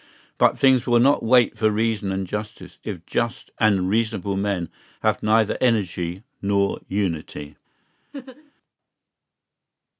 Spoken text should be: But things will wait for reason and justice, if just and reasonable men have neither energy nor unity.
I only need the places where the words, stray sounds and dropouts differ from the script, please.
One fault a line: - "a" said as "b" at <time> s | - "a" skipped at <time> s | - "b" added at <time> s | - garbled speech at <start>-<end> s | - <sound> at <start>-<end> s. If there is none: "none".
- "not" added at 1.0 s
- laugh at 8.1-8.5 s